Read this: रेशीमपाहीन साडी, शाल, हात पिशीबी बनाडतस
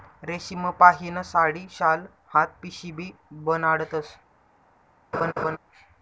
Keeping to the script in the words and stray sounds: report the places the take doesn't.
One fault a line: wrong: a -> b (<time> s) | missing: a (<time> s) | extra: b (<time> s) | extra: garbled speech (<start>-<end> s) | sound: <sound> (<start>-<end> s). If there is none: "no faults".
sound: laugh (5.1-5.6 s)